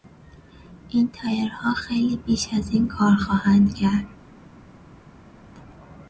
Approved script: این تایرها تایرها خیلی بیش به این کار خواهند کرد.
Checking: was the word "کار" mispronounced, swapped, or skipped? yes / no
no